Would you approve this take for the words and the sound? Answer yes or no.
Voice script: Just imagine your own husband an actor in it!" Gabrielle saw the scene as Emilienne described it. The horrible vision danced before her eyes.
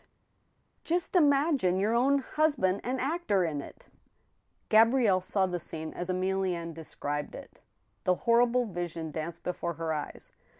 yes